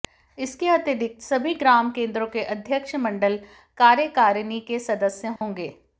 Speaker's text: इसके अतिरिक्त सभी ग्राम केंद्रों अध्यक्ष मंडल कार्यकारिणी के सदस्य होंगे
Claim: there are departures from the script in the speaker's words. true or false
true